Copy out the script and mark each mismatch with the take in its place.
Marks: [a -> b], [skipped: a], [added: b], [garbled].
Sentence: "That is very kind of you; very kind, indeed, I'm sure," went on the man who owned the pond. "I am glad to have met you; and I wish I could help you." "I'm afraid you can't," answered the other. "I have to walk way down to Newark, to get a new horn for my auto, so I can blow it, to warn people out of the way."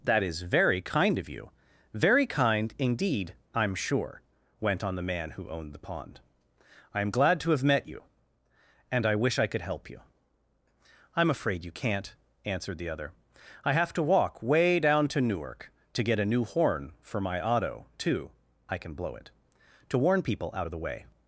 "That is very kind of you; very kind, indeed, I'm sure," went on the man who owned the pond. "I am glad to have met you; and I wish I could help you." "I'm afraid you can't," answered the other. "I have to walk way down to Newark, to get a new horn for my auto, [so -> too] I can blow it, to warn people out of the way."